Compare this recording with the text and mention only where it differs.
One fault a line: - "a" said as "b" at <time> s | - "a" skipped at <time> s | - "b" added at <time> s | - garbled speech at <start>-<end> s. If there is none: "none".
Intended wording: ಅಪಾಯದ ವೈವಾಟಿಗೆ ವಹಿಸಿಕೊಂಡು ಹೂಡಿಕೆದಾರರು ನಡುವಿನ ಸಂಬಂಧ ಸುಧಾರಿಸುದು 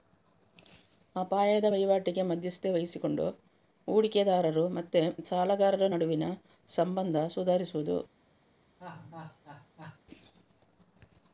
- "ಮಧ್ಯಸ್ಥಿಕೆ" added at 2.3 s
- "ಮತ್ತೆ ಸಾಲಗಾರರ" added at 4.8 s